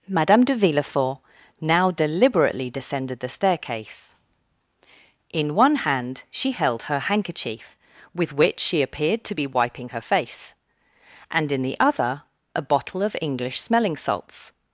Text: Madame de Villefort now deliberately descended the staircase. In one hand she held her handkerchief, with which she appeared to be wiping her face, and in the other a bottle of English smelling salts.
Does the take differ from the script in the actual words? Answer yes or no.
no